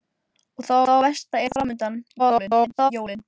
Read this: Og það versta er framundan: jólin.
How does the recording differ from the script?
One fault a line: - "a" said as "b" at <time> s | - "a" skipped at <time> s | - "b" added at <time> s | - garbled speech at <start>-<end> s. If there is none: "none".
- "það" added at 0.9 s
- garbled speech at 2.2-2.9 s